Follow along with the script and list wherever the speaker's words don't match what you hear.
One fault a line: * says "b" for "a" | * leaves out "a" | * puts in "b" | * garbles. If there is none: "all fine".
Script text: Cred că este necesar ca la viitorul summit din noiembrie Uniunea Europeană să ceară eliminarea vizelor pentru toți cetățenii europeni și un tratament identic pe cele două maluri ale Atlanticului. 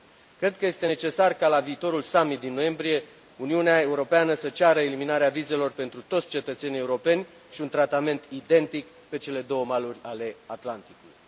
all fine